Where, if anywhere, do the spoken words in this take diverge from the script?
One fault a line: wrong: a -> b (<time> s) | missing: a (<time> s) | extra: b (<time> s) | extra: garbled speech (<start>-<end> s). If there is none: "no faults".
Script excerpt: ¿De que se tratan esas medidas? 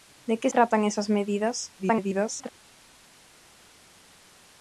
missing: se (0.5 s)
extra: garbled speech (1.8-2.5 s)